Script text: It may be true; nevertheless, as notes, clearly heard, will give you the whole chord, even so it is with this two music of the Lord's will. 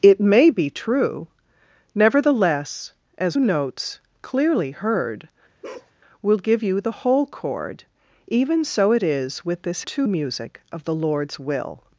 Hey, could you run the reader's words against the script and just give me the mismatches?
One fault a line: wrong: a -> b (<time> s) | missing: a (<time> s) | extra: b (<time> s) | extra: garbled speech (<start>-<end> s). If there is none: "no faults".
no faults